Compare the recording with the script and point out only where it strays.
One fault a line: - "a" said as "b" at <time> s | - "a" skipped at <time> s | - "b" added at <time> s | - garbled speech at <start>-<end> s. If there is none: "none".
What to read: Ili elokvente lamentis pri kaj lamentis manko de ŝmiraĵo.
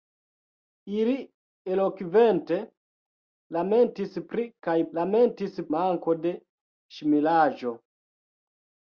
none